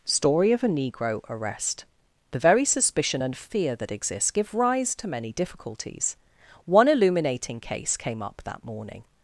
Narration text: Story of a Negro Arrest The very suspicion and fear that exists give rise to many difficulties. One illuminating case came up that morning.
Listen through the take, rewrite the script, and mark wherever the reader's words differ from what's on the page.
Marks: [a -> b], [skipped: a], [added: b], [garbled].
Story of a Negro Arrest The very suspicion and fear that exists give rise to many difficulties. One illuminating case came up that morning.